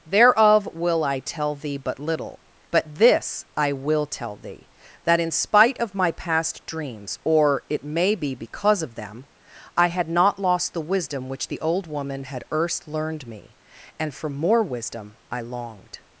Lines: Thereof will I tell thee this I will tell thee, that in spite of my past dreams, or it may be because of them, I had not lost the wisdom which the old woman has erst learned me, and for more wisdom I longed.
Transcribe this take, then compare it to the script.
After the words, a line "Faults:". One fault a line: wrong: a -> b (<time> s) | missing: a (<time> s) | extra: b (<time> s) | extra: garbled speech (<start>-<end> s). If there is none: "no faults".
Thereof will I tell thee but little: but this I will tell thee, that in spite of my past dreams, or it may be because of them, I had not lost the wisdom which the old woman had erst learned me, and for more wisdom I longed.
Faults:
extra: but little but (1.8 s)
wrong: has -> had (12.2 s)